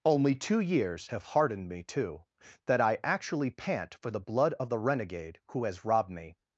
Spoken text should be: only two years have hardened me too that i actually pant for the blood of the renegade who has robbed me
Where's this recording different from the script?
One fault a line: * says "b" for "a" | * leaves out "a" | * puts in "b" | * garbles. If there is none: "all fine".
all fine